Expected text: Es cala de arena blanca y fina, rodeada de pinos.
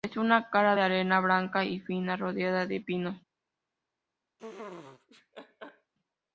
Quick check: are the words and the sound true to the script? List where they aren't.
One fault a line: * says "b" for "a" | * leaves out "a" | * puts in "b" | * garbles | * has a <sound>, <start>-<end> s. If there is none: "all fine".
* puts in "una"
* has a laugh, 4.4-5.9 s